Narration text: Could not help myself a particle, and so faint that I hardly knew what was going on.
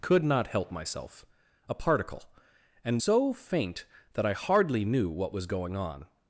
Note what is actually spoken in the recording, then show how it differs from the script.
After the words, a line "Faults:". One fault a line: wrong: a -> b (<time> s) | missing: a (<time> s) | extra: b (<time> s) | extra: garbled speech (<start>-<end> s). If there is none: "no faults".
Could not help myself a particle, and so faint that I hardly knew what was going on.
Faults:
no faults